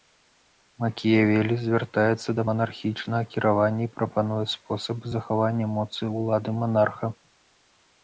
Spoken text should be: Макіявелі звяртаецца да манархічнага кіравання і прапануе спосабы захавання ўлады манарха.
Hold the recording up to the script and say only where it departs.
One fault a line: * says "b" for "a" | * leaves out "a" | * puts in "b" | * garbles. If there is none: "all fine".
* puts in "моцы"